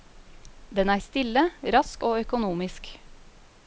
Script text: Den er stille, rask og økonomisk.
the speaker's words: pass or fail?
pass